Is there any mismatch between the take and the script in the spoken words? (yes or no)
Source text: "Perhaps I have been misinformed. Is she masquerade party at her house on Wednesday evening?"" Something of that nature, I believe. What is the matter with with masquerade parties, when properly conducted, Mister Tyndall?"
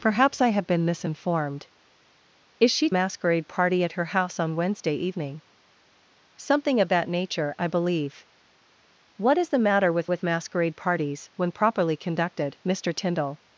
no